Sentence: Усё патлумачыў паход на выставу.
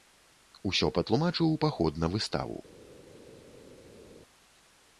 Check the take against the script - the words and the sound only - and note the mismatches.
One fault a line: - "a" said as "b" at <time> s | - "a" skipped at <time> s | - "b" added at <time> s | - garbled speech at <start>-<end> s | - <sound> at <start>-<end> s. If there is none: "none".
none